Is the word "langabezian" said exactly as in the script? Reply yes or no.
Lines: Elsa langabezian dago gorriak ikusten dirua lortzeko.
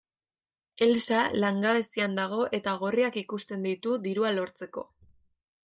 yes